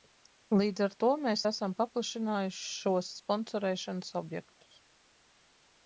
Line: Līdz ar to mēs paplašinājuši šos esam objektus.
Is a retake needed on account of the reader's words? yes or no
yes